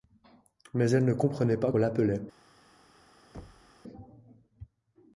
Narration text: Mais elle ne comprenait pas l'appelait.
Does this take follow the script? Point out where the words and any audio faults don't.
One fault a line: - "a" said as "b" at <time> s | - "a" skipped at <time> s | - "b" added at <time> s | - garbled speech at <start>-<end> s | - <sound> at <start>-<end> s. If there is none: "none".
- thud at 3.3-3.7 s